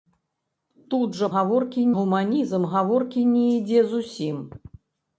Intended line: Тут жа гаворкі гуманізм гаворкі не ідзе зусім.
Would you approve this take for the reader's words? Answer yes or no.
yes